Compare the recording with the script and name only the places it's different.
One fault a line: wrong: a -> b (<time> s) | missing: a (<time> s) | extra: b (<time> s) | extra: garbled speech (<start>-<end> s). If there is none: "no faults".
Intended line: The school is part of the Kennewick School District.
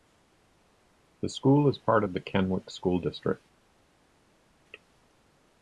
no faults